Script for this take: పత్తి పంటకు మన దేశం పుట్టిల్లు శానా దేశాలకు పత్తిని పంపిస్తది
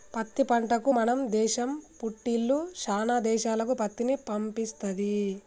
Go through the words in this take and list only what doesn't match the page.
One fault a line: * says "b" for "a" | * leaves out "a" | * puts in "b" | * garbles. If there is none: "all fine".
all fine